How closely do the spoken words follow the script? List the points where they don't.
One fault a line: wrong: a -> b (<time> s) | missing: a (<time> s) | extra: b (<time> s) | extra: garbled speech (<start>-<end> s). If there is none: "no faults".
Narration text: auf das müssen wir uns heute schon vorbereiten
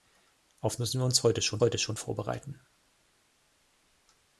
missing: das (0.8 s)
extra: heute schon (1.6 s)